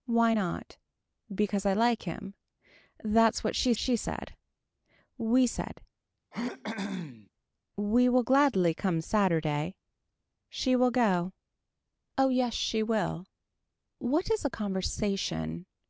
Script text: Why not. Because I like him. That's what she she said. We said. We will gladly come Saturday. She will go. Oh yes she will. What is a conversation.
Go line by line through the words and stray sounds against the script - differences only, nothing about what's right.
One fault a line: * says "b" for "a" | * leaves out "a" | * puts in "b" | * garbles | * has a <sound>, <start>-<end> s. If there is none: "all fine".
* has a throat clearing, 6.3-7.3 s